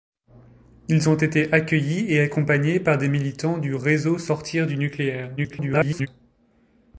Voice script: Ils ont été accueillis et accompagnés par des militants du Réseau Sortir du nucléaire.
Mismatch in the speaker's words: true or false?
true